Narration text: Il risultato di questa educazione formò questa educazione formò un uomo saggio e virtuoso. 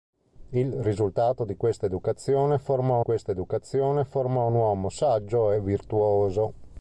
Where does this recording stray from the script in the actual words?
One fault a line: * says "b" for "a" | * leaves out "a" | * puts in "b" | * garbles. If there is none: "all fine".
all fine